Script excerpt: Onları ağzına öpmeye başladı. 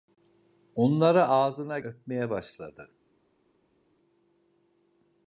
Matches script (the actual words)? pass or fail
pass